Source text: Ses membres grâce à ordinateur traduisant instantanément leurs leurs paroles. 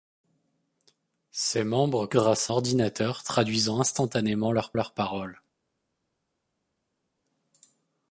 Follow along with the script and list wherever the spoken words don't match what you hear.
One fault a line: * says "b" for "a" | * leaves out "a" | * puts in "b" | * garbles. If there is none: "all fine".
all fine